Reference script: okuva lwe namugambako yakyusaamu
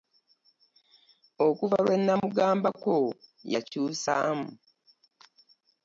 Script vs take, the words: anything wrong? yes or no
no